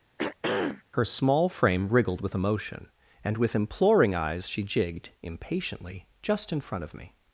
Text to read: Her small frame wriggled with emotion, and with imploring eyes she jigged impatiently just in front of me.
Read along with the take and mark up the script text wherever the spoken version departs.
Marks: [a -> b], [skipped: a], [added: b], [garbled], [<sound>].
[throat clearing] Her small frame wriggled with emotion, and with imploring eyes she jigged impatiently just in front of me.